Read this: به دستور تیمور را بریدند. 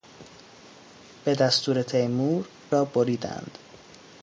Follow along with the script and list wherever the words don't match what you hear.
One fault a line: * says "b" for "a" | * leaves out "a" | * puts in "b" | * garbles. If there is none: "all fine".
all fine